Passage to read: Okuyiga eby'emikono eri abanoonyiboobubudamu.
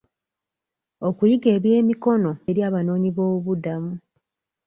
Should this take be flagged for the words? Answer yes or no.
no